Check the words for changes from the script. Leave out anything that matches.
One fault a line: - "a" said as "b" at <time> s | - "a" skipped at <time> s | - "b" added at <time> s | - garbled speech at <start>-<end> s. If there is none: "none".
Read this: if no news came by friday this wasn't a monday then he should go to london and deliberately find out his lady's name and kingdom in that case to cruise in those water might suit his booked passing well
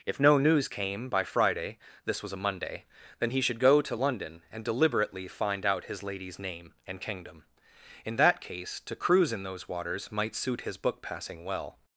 - "wasn't" said as "was" at 2.2 s
- "water" said as "waters" at 9.7 s
- "booked" said as "book" at 10.8 s